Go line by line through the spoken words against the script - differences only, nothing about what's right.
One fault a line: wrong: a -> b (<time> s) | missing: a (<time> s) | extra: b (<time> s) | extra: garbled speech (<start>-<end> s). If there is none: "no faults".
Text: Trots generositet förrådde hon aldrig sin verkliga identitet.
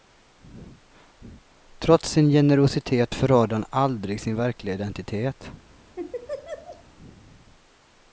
extra: sin (2.1 s)
wrong: hon -> han (3.5 s)